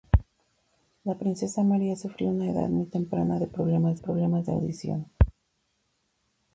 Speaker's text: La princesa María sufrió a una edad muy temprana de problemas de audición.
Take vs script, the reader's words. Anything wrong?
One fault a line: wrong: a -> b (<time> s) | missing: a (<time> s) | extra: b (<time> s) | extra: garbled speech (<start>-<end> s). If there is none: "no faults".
extra: problemas (3.9 s)